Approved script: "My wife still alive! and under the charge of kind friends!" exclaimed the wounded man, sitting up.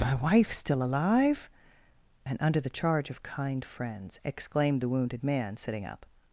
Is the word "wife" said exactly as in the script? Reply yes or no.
yes